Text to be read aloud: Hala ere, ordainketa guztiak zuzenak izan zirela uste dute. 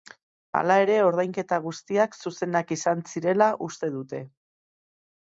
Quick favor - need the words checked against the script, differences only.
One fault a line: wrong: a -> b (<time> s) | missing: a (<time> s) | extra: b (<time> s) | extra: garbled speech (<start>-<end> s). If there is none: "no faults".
no faults